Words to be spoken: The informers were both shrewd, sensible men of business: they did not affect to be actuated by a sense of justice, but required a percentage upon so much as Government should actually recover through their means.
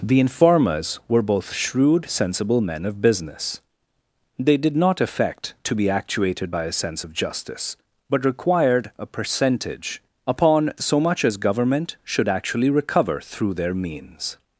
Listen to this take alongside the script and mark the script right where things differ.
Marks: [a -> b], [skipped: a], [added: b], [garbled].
The informers were both shrewd, sensible men of business: they did not affect to be actuated by a sense of justice, but required a percentage upon so much as Government should actually recover through their means.